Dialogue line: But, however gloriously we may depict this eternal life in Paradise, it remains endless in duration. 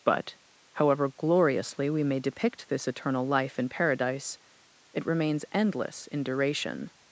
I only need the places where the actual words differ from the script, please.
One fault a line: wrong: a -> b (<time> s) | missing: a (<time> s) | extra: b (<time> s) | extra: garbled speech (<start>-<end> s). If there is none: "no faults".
no faults